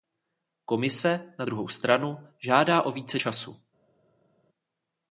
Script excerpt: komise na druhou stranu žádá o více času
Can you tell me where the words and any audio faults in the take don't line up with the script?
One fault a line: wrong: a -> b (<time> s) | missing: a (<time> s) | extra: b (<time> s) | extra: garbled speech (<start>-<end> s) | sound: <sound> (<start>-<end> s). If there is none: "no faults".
no faults